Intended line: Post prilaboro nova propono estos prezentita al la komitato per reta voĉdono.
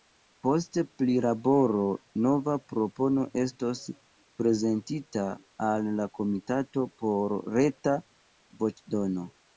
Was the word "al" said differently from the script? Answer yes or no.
no